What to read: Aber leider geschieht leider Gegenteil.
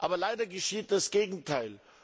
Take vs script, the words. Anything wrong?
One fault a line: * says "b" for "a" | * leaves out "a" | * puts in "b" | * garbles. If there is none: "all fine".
* says "das" for "leider"